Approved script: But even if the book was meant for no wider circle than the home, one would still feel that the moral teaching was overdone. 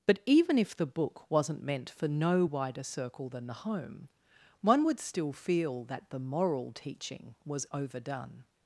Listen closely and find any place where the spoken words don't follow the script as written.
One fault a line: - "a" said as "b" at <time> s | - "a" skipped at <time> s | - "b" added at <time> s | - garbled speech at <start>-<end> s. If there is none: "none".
- "was" said as "wasn't" at 1.3 s